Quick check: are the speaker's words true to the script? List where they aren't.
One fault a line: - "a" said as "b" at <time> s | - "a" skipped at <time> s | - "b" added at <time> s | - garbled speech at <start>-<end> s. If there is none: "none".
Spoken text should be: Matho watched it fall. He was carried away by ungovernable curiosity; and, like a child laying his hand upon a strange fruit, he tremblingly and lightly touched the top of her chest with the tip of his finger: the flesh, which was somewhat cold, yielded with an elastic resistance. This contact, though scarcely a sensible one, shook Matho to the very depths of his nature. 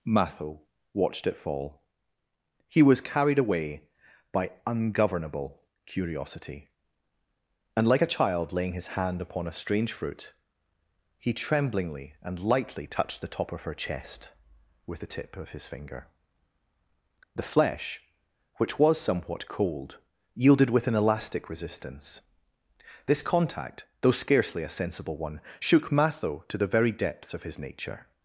none